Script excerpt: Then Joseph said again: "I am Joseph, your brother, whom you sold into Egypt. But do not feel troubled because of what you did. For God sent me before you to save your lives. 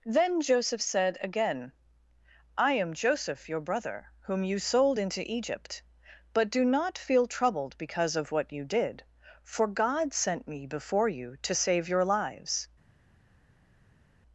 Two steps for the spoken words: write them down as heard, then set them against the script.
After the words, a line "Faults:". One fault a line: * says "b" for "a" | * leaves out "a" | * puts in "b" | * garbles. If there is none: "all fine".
Then Joseph said again: "I am Joseph, your brother, whom you sold into Egypt. But do not feel troubled because of what you did. For God sent me before you to save your lives.
Faults:
all fine